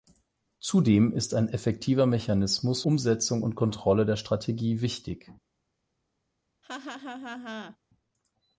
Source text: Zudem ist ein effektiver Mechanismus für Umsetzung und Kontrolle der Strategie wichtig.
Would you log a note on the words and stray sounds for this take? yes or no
yes